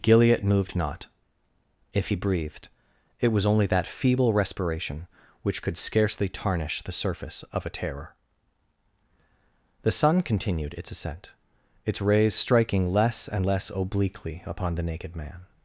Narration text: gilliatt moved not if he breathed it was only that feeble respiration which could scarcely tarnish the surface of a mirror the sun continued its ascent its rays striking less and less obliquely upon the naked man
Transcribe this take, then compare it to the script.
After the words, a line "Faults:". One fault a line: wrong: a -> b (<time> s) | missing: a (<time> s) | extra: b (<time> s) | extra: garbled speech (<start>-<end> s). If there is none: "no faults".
gilliatt moved not if he breathed it was only that feeble respiration which could scarcely tarnish the surface of a terror the sun continued its ascent its rays striking less and less obliquely upon the naked man
Faults:
wrong: mirror -> terror (7.7 s)